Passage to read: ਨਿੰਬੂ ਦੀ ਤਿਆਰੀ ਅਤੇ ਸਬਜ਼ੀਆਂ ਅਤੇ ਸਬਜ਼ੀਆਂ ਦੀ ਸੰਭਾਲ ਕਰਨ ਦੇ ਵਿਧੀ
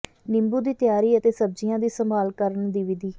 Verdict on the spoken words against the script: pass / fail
fail